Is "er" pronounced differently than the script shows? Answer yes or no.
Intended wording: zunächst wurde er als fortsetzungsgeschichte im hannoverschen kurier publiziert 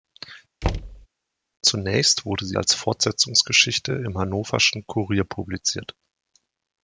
yes